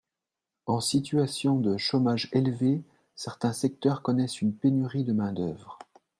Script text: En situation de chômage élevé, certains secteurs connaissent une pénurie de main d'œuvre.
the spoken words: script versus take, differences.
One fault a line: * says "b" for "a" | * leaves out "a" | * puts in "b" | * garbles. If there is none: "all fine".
all fine